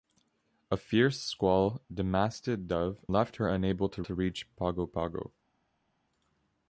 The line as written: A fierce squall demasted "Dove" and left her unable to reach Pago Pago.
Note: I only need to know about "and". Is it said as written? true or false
false